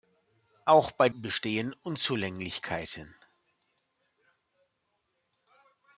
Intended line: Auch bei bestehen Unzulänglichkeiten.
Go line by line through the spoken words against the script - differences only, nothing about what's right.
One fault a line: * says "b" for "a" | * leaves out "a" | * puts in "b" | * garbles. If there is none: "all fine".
all fine